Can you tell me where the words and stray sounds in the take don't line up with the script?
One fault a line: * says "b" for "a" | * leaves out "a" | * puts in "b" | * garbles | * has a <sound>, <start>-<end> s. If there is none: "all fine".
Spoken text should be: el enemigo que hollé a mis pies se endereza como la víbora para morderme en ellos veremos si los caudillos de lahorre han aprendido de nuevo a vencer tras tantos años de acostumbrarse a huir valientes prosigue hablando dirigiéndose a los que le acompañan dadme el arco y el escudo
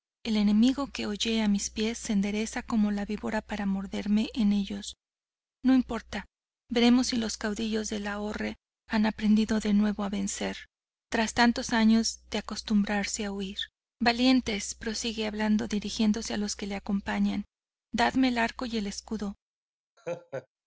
* puts in "no importa"
* has a laugh, 20.0-20.5 s